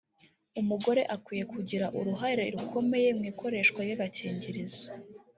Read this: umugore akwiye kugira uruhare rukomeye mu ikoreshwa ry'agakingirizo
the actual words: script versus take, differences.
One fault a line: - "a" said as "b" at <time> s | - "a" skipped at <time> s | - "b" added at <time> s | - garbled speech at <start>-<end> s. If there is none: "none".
none